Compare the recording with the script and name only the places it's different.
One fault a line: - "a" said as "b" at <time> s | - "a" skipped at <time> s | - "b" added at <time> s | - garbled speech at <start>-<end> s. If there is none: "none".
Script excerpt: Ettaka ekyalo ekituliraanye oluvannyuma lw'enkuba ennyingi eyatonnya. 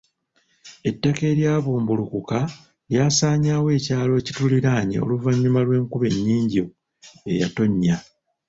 - "eryabumbulukuka lyasaanyaawo" added at 1.3 s